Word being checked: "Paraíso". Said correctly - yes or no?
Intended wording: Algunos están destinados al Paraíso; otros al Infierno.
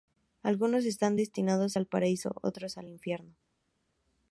yes